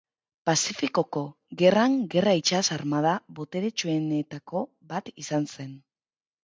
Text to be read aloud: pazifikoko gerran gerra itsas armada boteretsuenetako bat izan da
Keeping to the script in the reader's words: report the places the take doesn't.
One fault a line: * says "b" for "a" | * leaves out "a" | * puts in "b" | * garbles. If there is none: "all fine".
* says "zen" for "da"